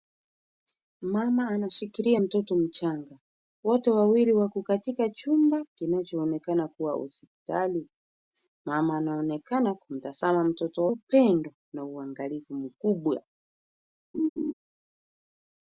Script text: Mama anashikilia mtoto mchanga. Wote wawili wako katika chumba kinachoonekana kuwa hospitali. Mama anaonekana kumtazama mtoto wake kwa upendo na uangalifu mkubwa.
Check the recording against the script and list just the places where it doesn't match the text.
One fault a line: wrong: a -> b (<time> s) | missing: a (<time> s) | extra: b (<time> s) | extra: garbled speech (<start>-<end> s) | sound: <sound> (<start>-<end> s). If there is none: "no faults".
missing: wake kwa (10.9 s)
sound: laugh (14.1-14.5 s)